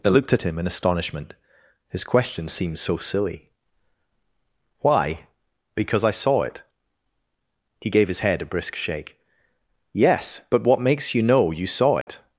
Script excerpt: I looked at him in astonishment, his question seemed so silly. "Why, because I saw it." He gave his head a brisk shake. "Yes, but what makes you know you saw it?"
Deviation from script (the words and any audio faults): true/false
true